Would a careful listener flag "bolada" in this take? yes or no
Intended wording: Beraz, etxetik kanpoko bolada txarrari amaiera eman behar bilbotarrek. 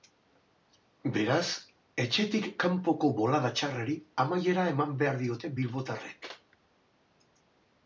no